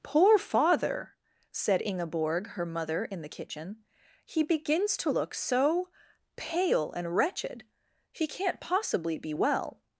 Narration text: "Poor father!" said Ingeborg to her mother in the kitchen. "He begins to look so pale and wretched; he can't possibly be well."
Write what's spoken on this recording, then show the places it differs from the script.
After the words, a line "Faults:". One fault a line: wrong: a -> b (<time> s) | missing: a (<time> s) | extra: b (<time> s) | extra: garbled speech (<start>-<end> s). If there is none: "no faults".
"Poor father!" said Ingeborg her mother in the kitchen. "He begins to look so pale and wretched; he can't possibly be well."
Faults:
missing: to (2.5 s)